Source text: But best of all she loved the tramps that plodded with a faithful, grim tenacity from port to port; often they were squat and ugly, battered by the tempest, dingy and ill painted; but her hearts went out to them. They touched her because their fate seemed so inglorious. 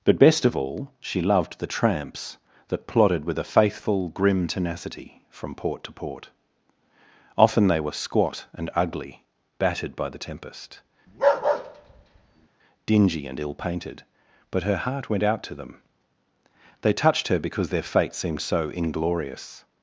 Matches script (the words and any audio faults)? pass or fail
fail